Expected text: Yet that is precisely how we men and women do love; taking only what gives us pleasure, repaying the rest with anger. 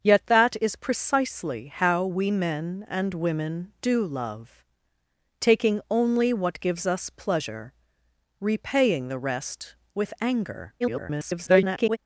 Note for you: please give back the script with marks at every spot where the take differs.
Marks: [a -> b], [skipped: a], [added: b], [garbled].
Yet that is precisely how we men and women do love; taking only what gives us pleasure, repaying the rest with anger. [garbled]